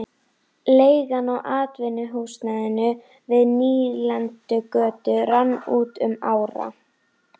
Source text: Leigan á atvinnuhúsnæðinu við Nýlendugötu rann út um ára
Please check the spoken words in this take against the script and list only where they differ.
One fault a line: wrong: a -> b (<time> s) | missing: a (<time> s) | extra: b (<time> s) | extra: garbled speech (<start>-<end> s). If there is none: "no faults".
no faults